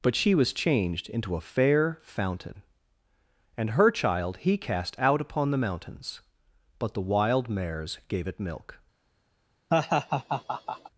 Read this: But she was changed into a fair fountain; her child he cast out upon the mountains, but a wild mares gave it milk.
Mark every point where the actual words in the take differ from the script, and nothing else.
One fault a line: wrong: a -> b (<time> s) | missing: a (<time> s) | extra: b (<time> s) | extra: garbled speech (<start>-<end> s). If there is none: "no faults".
extra: and (3.5 s)
wrong: a -> the (7.0 s)